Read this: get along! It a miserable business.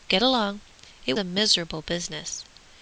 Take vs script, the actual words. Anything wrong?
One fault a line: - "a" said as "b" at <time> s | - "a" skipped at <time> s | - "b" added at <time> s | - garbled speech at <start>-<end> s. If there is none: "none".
none